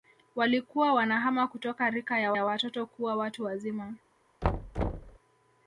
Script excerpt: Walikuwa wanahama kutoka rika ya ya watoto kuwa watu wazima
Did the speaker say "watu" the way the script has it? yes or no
yes